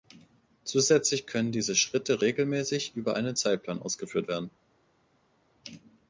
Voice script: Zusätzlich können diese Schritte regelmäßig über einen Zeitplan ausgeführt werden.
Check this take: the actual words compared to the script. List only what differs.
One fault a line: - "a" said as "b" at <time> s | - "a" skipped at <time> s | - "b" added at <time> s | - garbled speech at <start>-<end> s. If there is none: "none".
none